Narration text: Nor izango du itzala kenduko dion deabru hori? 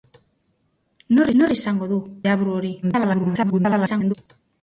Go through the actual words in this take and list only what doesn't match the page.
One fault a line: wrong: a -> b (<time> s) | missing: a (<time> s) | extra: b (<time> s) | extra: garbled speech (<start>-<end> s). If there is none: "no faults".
extra: nor (1.4 s)
missing: itzala kenduko dion (2.0 s)
extra: garbled speech (2.8-4.1 s)